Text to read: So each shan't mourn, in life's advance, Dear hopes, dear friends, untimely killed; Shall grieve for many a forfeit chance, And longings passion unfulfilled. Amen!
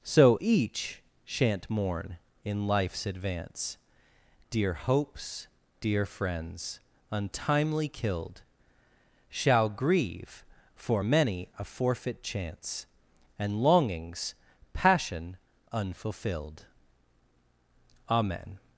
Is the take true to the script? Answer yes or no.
yes